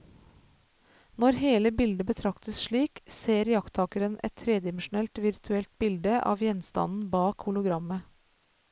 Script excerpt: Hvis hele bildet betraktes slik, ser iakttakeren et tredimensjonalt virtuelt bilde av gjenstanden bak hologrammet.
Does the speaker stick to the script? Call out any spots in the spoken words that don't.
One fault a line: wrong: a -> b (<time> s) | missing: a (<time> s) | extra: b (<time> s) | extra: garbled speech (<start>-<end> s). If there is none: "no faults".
wrong: Hvis -> Når (1.2 s)